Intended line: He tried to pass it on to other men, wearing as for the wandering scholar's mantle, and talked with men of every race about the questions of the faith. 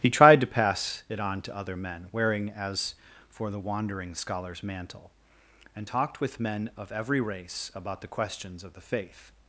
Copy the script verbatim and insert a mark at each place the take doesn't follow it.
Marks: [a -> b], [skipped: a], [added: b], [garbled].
He tried to pass it on to other men, wearing as for the wandering scholar's mantle, and talked with men of every race about the questions of the faith.